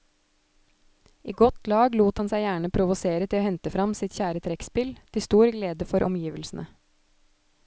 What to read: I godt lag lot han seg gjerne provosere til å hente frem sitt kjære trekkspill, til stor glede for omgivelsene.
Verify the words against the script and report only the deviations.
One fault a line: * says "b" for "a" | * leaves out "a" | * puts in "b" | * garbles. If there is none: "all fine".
all fine